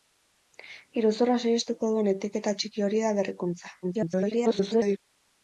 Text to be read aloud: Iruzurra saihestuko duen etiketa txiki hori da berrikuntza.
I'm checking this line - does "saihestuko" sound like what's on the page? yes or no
yes